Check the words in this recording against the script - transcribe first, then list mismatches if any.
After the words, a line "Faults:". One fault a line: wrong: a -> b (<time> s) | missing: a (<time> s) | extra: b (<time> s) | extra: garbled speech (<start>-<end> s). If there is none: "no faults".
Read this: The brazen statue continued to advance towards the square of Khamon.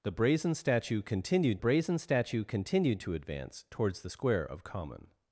The brazen statue continued brazen statue continued to advance towards the square of Khamon.
Faults:
extra: brazen statue continued (1.6 s)